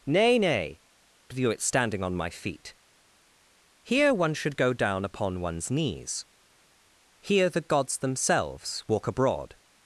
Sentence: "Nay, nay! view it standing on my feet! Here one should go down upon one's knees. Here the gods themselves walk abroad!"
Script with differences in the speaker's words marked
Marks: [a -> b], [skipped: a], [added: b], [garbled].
"Nay, nay! view it standing on my feet! Here one should go down upon one's knees. Here the gods themselves walk abroad!"